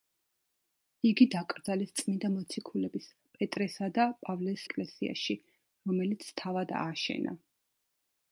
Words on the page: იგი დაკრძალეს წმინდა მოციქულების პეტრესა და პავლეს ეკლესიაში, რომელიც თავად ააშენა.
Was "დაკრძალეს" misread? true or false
false